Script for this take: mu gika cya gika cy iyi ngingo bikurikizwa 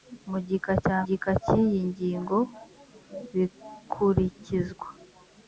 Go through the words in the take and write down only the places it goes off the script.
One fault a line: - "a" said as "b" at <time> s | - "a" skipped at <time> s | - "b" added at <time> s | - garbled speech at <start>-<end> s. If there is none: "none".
none